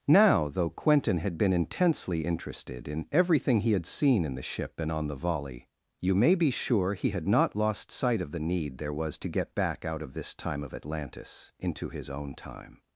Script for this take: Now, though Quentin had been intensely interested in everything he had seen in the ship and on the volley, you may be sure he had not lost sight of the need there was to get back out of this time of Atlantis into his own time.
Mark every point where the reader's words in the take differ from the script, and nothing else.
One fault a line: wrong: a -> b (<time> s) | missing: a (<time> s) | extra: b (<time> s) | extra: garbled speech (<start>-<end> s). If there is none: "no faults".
no faults